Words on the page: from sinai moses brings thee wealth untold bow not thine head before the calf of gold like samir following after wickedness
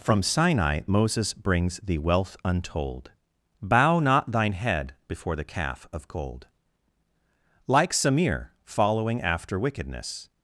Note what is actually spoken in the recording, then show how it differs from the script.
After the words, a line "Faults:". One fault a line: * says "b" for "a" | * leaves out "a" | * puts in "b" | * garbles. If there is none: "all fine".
from sinai moses brings thee wealth untold bow not thine head before the calf of gold like samir following after wickedness
Faults:
all fine